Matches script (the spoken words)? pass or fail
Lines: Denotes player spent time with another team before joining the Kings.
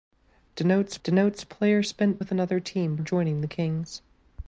fail